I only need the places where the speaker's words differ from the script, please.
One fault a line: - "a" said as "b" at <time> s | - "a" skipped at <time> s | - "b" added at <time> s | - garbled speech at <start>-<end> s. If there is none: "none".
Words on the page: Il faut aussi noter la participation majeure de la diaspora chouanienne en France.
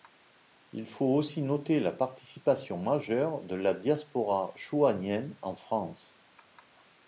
none